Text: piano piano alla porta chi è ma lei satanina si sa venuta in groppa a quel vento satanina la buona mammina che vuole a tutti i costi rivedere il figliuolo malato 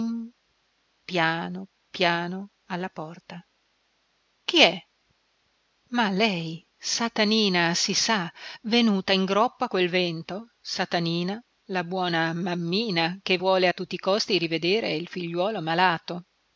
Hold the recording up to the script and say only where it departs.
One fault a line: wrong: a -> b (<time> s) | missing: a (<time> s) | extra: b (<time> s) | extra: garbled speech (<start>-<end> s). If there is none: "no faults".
no faults